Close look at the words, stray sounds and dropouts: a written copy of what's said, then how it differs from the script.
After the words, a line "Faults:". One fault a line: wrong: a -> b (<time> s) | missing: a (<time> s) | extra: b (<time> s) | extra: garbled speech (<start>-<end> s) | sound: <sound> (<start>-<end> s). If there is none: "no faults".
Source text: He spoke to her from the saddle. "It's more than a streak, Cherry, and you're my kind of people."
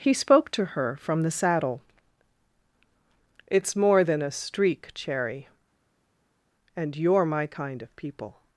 He spoke to her from the saddle. "It's more than a streak, Cherry, and you're my kind of people."
Faults:
no faults